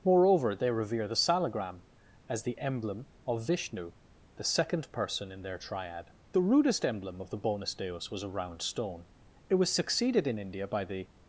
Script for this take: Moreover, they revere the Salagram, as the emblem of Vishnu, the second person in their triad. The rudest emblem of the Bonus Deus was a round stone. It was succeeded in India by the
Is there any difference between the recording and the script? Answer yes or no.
no